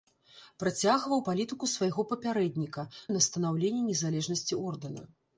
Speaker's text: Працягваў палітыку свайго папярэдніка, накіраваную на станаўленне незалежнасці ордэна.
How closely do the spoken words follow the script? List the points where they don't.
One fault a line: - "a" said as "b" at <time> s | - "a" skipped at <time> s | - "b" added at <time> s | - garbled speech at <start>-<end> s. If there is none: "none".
- "накіраваную" skipped at 2.9 s